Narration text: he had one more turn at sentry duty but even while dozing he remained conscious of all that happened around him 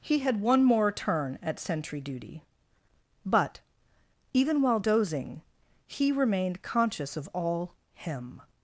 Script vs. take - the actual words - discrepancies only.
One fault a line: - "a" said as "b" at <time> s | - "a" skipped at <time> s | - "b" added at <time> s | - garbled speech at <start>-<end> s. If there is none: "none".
- "that happened around" skipped at 7.7 s